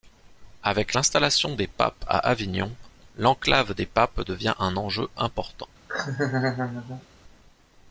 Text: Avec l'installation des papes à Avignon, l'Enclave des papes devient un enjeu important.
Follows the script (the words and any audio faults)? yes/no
no